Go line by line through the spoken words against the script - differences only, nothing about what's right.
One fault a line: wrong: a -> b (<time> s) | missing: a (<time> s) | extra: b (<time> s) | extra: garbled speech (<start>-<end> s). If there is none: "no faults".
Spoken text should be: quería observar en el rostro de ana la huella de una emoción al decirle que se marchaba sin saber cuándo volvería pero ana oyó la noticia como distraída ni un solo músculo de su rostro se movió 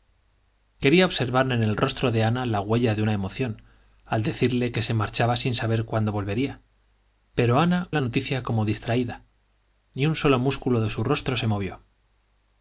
missing: oyó (7.9 s)